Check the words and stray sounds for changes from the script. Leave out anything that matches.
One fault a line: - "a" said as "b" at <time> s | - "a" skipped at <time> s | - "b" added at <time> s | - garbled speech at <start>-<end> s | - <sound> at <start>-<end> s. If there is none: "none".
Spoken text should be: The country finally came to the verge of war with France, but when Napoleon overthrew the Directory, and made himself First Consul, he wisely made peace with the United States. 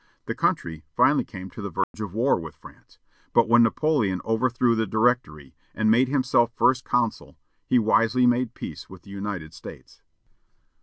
- dropout at 1.8-1.9 s